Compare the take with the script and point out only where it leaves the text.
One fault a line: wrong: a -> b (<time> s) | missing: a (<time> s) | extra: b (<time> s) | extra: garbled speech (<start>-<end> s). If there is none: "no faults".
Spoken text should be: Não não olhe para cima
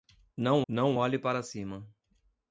no faults